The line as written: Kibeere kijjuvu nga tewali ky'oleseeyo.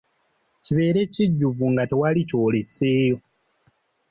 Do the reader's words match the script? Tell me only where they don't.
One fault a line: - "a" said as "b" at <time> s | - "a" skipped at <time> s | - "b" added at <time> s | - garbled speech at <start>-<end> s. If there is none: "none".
none